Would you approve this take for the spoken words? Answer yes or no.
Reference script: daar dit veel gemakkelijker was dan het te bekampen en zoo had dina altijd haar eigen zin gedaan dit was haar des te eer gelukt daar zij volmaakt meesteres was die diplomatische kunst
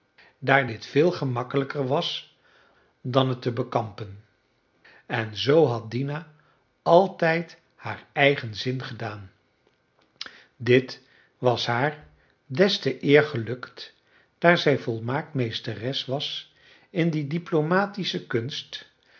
no